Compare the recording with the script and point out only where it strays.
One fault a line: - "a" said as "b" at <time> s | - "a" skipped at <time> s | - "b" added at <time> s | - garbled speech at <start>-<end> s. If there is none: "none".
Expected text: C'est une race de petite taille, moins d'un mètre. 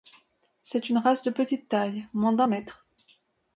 none